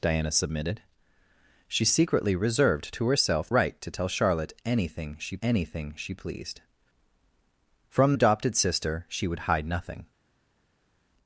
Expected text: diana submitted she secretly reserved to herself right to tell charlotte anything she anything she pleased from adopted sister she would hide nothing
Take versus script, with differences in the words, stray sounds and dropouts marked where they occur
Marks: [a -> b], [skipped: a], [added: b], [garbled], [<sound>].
diana submitted she secretly reserved to herself right to tell charlotte anything she anything she pleased from adopted sister she would hide nothing